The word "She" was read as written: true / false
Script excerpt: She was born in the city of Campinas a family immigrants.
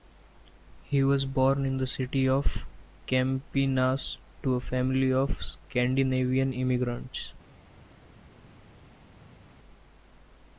false